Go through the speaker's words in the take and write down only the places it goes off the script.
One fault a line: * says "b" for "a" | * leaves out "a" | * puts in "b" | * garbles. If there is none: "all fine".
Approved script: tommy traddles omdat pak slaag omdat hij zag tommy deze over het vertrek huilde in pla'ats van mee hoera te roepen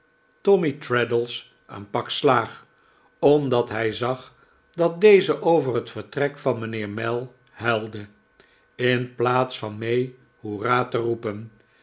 * says "een" for "omdat"
* says "dat" for "tommy"
* puts in "van mijnheer mell"